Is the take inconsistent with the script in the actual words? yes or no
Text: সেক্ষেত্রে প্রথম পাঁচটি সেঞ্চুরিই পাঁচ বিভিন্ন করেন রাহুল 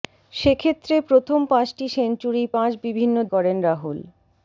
no